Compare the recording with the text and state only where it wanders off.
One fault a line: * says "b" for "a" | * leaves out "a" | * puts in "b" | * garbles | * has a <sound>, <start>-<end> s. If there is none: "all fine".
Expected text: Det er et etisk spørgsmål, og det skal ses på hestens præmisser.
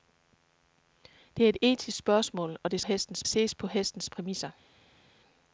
* says "hestens" for "skal"